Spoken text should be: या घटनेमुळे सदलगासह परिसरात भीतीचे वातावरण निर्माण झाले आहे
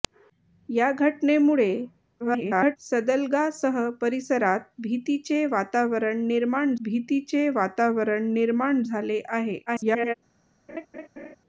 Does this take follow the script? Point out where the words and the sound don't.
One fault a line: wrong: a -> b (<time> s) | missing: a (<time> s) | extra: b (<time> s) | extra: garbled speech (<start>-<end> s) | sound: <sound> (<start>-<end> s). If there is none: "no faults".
extra: garbled speech (2.2-2.8 s)
extra: भीतीचे वातावरण निर्माण (6.8 s)
extra: garbled speech (9.7-10.1 s)
sound: laugh (10.7-11.4 s)